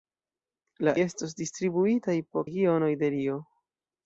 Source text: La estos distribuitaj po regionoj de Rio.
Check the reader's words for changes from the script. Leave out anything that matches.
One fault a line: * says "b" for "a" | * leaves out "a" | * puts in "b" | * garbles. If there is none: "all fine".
all fine